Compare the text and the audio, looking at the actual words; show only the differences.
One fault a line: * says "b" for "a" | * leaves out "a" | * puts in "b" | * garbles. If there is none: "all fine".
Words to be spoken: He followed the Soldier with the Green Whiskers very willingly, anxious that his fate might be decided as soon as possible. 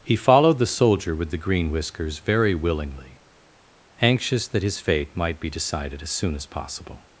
all fine